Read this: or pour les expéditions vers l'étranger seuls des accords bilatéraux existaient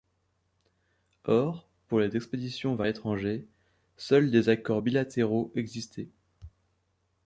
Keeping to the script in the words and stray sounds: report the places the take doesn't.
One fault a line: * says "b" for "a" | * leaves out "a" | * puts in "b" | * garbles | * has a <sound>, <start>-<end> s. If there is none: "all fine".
all fine